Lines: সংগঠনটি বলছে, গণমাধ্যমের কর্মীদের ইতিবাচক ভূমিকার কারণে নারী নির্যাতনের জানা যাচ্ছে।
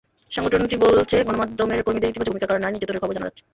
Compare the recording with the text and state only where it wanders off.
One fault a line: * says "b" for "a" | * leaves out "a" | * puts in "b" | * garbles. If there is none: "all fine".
* puts in "খবর"